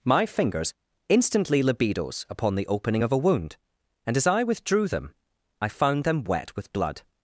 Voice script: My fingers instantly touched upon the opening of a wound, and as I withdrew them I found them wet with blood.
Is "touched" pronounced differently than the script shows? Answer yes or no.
yes